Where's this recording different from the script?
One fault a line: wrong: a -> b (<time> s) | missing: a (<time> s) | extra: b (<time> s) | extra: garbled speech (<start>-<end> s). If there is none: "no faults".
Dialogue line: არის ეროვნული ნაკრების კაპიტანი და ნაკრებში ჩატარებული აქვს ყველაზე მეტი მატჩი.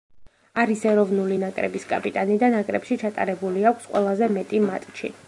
no faults